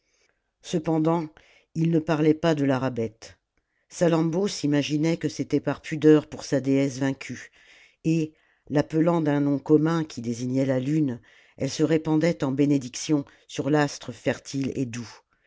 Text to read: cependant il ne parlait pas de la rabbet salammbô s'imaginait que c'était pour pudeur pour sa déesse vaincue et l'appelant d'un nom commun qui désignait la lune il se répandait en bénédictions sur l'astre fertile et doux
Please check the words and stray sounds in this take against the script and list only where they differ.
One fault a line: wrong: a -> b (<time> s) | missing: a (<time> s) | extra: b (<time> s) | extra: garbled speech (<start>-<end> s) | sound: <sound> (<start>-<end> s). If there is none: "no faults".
wrong: pour -> par (5.6 s)
wrong: il -> elle (11.6 s)